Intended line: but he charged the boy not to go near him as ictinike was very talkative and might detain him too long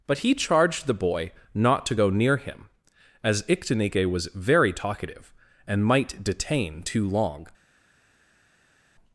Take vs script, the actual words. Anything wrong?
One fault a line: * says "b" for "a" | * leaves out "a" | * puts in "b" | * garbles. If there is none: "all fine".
* leaves out "him"